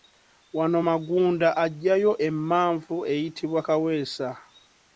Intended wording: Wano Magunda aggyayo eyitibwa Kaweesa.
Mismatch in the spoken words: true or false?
true